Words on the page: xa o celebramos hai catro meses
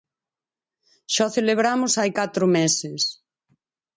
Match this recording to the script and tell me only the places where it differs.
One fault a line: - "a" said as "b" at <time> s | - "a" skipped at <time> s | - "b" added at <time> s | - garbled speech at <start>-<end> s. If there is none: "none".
none